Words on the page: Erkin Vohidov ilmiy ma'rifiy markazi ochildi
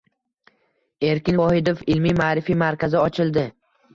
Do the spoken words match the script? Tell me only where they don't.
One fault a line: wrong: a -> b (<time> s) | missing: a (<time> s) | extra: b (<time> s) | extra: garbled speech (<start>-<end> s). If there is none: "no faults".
no faults